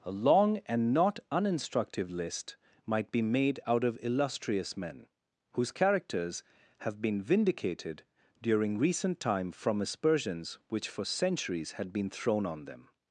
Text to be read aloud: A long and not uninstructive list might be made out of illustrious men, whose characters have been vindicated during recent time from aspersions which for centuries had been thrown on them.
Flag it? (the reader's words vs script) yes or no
no